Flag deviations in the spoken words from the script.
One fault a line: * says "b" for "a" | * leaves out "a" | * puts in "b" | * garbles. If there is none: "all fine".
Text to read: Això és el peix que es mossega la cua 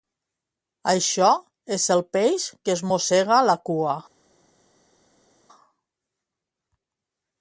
all fine